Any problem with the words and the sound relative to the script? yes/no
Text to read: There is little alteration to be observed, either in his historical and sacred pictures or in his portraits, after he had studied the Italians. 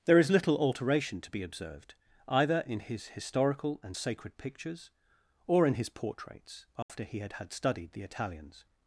yes